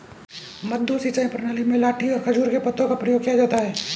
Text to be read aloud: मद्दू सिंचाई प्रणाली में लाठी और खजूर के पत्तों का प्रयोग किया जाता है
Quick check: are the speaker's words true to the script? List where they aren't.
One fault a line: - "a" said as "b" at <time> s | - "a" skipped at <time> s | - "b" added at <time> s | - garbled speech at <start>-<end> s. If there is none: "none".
none